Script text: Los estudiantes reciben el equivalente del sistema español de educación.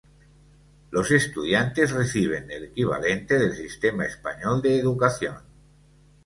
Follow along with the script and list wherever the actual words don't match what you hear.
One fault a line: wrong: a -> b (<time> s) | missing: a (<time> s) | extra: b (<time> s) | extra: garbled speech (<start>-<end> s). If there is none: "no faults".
no faults